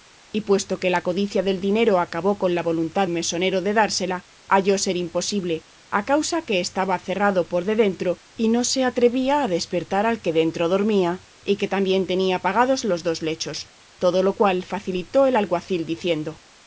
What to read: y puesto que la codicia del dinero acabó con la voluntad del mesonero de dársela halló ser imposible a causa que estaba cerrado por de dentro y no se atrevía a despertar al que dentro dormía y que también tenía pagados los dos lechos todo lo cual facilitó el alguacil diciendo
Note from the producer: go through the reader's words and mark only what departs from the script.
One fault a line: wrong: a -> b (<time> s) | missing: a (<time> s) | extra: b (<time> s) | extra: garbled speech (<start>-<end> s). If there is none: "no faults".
missing: del (3.1 s)